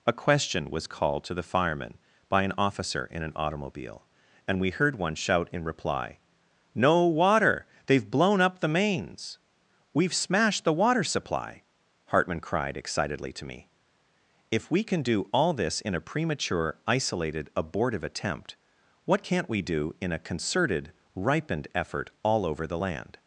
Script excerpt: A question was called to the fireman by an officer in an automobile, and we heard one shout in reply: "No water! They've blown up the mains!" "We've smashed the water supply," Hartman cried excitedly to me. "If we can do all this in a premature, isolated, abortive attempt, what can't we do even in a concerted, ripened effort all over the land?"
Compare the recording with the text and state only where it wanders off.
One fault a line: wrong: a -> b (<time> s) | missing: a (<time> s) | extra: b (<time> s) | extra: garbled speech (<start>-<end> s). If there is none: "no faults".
missing: even (19.9 s)